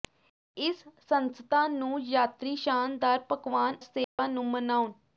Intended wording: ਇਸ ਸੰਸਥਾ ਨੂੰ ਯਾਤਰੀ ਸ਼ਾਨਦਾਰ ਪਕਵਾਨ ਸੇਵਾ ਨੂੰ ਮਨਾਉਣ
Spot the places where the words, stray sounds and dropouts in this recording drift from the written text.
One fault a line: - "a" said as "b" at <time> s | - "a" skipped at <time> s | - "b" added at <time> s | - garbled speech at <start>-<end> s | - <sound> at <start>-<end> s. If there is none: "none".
- dropout at 4.0-4.2 s